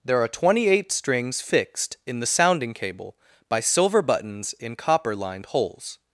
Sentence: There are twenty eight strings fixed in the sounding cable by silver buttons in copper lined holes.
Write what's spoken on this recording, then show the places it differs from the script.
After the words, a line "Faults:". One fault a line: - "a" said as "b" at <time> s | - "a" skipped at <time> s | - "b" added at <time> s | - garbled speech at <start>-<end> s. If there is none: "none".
There are twenty eight strings fixed in the sounding cable by silver buttons in copper lined holes.
Faults:
none